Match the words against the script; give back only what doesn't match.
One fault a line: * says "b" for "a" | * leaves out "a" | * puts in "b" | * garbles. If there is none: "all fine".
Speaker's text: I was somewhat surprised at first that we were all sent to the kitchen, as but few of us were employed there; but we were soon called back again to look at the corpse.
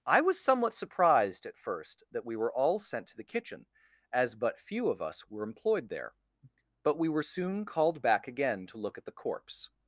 all fine